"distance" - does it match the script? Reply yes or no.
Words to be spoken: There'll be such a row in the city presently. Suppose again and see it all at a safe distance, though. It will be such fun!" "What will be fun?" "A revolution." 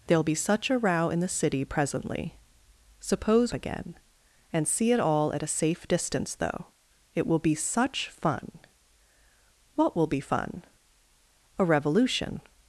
yes